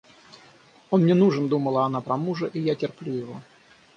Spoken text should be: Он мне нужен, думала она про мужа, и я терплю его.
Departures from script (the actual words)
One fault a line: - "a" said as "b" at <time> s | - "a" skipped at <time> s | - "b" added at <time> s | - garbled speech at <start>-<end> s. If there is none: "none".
none